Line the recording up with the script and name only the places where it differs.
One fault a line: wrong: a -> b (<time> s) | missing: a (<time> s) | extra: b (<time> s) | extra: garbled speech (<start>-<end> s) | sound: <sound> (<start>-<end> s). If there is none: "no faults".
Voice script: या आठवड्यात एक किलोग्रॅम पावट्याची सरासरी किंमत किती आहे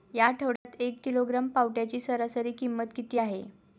sound: dropout (0.6-0.7 s)